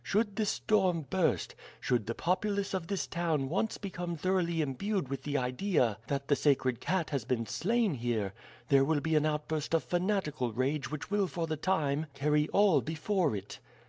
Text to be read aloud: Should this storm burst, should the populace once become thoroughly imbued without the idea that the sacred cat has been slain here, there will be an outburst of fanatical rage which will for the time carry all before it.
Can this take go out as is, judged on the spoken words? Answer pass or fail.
fail